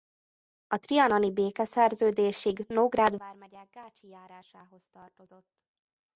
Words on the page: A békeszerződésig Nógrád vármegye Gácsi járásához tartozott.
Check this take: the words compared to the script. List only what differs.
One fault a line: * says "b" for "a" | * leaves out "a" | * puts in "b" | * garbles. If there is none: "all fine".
* puts in "trianoni"